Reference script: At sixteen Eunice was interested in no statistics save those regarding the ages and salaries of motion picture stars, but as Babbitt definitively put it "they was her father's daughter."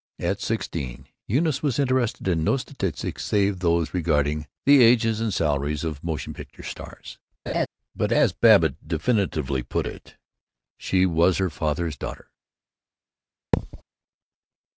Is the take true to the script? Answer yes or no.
no